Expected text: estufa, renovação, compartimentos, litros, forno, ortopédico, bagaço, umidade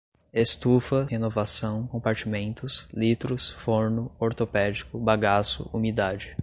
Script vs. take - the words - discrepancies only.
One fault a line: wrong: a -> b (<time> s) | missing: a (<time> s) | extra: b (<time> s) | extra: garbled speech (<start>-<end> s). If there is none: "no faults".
no faults